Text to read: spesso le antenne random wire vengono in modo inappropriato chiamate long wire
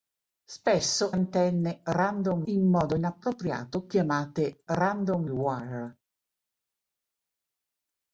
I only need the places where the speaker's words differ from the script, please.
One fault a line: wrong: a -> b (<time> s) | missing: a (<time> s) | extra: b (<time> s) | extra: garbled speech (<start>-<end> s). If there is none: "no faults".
missing: le (1.1 s)
missing: wire vengono (2.4 s)
wrong: long -> random (4.7 s)